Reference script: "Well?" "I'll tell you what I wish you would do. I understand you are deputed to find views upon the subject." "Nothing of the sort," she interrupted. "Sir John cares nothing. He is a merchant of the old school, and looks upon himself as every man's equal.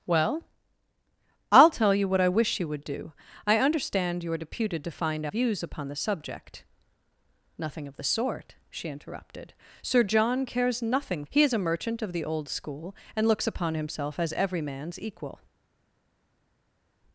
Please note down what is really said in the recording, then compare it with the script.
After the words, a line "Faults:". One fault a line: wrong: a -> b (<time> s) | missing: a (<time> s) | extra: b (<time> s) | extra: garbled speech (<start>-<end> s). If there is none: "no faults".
"Well?" "I'll tell you what I wish you would do. I understand you are deputed to find views upon the subject." "Nothing of the sort," she interrupted. "Sir John cares nothing. He is a merchant of the old school, and looks upon himself as every man's equal.
Faults:
no faults